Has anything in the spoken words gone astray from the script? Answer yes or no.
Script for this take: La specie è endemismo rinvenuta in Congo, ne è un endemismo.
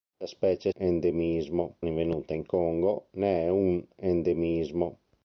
no